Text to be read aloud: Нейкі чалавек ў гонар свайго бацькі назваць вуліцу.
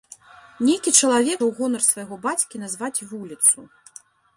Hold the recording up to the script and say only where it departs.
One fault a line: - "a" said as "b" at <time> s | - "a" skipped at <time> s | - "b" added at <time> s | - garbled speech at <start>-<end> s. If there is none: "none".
none